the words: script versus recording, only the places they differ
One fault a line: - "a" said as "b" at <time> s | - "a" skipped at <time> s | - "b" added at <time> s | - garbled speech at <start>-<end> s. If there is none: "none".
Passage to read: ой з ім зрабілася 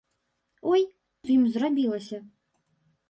none